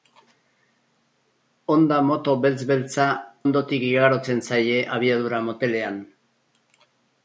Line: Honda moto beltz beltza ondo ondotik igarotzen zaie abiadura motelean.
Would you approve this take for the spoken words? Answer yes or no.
no